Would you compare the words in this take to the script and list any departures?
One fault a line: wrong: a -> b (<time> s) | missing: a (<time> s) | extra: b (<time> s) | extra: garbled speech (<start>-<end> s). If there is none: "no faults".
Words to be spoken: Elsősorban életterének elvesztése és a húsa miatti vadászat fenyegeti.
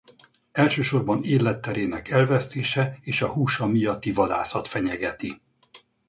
no faults